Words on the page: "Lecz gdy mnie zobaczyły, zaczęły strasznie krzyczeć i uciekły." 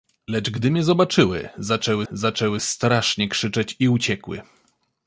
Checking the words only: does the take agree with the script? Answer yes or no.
no